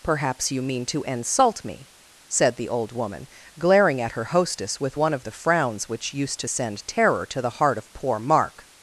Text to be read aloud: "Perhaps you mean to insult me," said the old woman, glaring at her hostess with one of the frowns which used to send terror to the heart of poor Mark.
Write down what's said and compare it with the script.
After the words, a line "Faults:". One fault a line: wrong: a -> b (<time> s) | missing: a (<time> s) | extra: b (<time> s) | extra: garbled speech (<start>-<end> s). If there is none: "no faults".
"Perhaps you mean to insult me," said the old woman, glaring at her hostess with one of the frowns which used to send terror to the heart of poor Mark.
Faults:
no faults